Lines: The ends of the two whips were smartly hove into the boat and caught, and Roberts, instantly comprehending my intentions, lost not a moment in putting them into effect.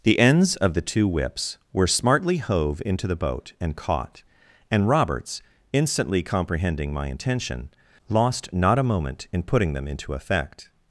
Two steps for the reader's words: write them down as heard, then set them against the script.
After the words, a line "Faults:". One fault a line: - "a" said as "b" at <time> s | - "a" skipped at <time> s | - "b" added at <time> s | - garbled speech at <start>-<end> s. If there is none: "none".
The ends of the two whips were smartly hove into the boat and caught, and Roberts, instantly comprehending my intention, lost not a moment in putting them into effect.
Faults:
- "intentions" said as "intention" at 7.1 s